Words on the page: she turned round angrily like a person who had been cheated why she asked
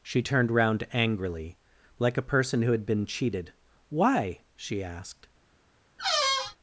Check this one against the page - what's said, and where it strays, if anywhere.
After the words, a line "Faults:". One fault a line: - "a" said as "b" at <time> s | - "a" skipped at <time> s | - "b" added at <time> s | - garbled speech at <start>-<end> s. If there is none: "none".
she turned round angrily like a person who had been cheated why she asked
Faults:
none